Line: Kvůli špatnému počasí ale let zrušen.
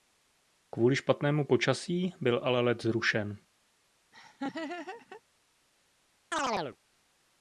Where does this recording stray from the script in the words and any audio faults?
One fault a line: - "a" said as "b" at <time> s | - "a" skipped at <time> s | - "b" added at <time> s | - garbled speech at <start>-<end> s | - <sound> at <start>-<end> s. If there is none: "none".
- "byl" added at 2.2 s
- laugh at 4.1-5.2 s
- chirp at 6.3-6.8 s